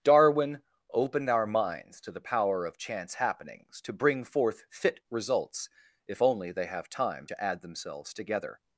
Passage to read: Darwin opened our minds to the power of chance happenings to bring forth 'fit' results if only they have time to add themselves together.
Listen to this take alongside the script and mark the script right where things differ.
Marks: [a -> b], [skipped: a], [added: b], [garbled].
Darwin opened our minds to the power of chance happenings to bring forth 'fit' results if only they have time to add themselves together.